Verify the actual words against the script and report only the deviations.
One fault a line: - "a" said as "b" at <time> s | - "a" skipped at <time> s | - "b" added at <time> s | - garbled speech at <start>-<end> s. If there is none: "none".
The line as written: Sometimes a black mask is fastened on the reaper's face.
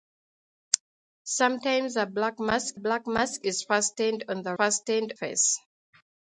- "black mask" added at 2.8 s
- "reaper's" said as "fastened" at 4.5 s